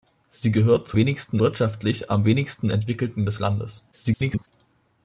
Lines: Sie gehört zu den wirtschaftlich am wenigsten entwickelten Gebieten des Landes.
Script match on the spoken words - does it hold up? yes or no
no